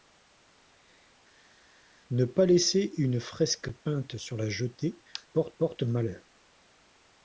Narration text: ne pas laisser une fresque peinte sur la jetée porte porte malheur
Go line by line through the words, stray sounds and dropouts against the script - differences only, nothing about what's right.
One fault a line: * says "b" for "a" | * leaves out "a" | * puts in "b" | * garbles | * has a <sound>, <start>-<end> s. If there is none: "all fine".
all fine